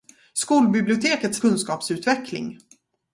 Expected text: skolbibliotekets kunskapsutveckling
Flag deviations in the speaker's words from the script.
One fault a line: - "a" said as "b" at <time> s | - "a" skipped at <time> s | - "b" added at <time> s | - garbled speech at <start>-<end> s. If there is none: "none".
none